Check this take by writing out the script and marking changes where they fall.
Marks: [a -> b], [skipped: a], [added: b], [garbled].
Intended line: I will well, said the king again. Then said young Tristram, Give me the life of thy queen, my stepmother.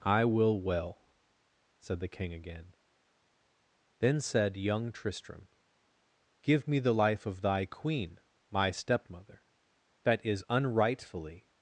I will well, said the king again. Then said young Tristram, Give me the life of thy queen, my stepmother. [added: That is unrightfully]